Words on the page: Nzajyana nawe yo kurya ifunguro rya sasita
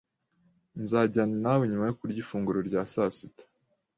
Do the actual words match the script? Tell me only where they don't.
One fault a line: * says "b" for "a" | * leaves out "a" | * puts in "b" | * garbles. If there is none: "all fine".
* puts in "nyuma"